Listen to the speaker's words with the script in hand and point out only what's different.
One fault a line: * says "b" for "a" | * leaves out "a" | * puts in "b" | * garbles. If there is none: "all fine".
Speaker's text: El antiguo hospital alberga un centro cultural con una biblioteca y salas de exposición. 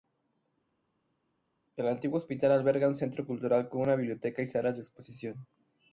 all fine